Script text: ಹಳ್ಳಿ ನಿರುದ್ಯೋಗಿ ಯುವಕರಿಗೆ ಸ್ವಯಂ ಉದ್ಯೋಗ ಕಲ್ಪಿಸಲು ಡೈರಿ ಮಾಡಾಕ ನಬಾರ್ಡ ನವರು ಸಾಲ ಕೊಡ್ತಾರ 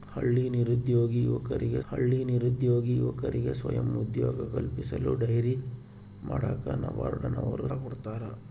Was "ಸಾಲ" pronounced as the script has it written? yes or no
no